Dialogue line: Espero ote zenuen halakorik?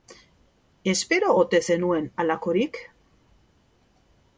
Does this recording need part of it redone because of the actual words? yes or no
no